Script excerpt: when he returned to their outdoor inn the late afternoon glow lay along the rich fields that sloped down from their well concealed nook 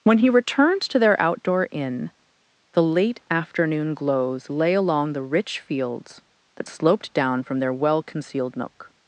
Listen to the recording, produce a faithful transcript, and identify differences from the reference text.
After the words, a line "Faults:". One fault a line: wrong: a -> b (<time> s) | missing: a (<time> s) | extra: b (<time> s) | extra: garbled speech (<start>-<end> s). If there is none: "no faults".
when he returned to their outdoor inn the late afternoon glows lay along the rich fields that sloped down from their well concealed nook
Faults:
wrong: glow -> glows (3.9 s)